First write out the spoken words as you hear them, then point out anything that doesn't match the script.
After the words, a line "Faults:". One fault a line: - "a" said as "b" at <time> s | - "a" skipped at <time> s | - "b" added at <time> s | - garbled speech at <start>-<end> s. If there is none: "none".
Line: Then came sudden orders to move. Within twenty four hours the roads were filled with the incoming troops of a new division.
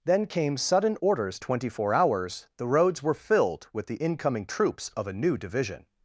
Then came sudden orders twenty four hours the roads were filled with the incoming troops of a new division.
Faults:
- "to move Within" skipped at 1.4 s